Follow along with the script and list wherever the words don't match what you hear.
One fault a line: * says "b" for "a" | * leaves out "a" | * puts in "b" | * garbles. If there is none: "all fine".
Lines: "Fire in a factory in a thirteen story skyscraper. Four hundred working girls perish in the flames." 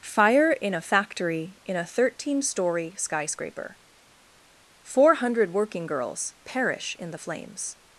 all fine